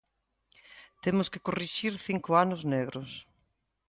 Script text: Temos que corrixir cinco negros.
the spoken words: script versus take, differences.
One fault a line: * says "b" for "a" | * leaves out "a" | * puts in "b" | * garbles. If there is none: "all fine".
* puts in "anos"